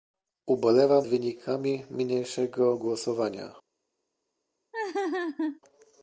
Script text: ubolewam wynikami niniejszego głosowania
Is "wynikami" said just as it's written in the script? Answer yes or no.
yes